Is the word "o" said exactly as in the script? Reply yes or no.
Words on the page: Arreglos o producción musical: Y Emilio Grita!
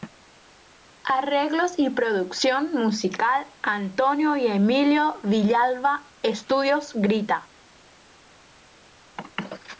no